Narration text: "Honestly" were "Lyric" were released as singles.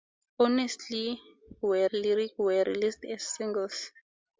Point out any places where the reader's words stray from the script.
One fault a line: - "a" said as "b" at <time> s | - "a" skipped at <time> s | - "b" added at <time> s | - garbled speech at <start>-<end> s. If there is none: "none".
none